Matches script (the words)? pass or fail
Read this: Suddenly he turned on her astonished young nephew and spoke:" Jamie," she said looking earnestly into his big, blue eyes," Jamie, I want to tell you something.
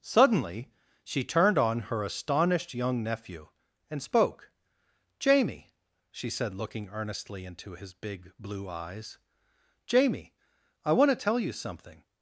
fail